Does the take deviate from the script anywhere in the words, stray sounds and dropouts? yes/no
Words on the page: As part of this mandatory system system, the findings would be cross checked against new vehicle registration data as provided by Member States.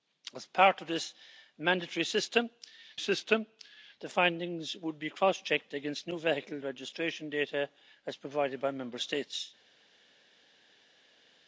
no